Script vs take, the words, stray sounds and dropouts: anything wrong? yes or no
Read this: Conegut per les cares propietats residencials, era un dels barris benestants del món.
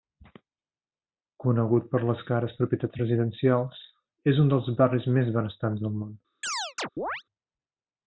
yes